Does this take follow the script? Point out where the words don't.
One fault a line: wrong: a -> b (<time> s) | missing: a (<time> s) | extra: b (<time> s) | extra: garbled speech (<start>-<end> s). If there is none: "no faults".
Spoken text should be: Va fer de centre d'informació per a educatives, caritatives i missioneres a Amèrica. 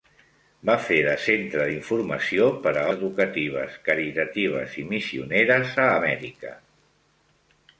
no faults